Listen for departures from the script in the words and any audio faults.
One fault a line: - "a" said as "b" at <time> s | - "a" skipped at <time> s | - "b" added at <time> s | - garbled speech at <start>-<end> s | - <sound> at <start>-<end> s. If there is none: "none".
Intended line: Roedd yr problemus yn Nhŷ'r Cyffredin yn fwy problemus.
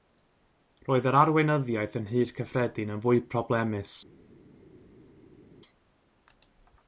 - "problemus" said as "arweinyddiaeth" at 1.2 s